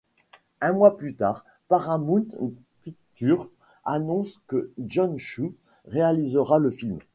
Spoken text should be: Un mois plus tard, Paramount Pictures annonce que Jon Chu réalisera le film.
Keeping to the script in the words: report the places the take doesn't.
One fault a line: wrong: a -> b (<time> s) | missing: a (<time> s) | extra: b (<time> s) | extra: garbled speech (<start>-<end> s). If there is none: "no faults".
no faults